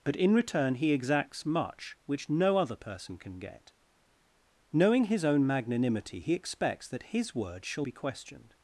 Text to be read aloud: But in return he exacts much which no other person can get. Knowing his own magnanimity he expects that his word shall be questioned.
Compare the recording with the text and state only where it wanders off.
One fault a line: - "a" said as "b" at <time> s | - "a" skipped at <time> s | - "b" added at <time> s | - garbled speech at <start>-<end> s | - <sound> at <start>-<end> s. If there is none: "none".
none